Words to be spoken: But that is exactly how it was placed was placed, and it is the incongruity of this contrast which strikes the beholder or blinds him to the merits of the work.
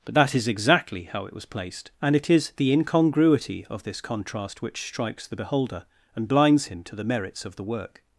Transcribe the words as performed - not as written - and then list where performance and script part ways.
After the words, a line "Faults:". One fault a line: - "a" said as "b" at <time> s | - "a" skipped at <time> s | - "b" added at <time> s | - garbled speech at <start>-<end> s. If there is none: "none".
But that is exactly how it was placed, and it is the incongruity of this contrast which strikes the beholder and blinds him to the merits of the work.
Faults:
- "was placed" skipped at 1.9 s
- "or" said as "and" at 6.2 s